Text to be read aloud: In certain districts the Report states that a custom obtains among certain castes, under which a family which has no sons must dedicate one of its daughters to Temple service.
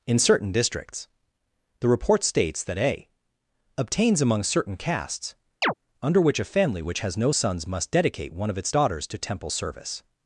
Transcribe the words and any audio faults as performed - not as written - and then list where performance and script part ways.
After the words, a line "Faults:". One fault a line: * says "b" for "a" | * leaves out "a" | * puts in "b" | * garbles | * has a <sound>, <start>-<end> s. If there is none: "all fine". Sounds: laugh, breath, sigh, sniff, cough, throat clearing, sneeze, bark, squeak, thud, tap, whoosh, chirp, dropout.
In certain districts the Report states that a obtains among certain castes, under which a family which has no sons must dedicate one of its daughters to Temple service.
Faults:
* leaves out "custom"
* has a chirp, 5.6-5.7 s